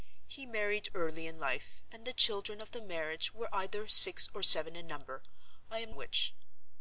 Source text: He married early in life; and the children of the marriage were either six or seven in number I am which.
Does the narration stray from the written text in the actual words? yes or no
no